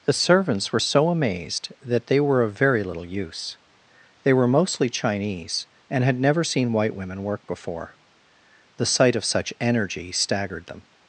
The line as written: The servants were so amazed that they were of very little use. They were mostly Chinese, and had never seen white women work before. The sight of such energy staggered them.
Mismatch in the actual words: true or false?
false